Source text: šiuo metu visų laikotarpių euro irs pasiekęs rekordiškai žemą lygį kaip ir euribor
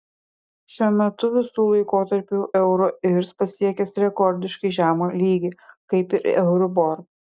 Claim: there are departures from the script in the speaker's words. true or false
false